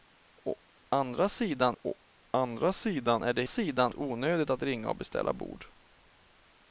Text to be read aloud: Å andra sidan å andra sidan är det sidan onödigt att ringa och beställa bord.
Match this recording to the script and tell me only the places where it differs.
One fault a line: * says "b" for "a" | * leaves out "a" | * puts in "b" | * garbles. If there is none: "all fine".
all fine